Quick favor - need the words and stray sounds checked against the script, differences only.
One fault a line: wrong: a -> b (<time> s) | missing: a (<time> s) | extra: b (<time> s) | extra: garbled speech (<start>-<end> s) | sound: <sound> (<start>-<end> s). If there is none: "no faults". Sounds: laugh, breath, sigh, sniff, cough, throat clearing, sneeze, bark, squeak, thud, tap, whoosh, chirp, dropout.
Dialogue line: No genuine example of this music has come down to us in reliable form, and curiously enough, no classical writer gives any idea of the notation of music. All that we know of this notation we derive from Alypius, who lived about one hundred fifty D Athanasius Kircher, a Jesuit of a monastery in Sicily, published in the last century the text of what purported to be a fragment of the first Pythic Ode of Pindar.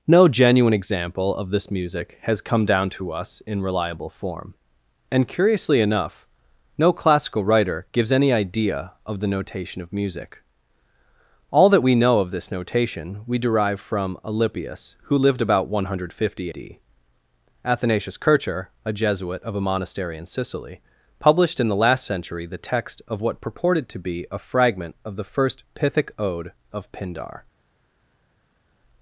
no faults